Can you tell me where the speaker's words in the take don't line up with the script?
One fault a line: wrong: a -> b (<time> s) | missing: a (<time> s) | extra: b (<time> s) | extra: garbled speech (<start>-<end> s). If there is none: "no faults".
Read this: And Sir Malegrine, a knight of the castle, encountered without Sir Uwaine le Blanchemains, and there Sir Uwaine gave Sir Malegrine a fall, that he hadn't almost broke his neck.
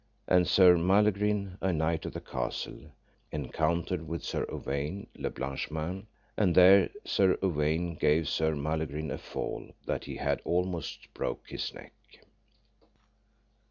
wrong: without -> with (4.1 s)
wrong: hadn't -> had (10.2 s)